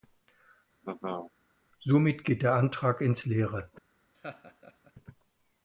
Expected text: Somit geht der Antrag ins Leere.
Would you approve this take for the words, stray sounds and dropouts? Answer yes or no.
no